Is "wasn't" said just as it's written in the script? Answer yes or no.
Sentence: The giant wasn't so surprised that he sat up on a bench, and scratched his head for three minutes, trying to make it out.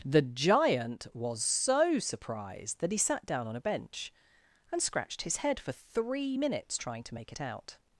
no